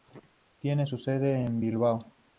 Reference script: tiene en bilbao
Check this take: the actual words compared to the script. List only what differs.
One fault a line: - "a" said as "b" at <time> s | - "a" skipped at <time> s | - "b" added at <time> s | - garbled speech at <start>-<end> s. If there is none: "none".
- "su sede" added at 0.8 s